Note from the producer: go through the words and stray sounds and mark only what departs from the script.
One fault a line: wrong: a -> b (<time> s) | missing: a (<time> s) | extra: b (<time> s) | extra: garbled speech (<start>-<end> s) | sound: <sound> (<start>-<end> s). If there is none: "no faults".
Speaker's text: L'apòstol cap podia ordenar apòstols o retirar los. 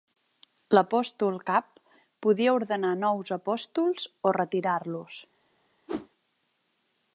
extra: nous (3.0 s)
sound: whoosh (5.9-6.1 s)